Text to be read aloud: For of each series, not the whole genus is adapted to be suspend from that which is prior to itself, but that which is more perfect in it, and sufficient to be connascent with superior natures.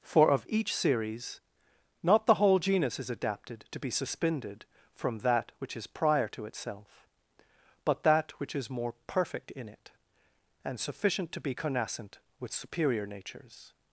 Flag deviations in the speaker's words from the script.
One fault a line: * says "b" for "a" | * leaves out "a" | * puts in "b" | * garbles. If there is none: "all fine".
* says "suspended" for "suspend"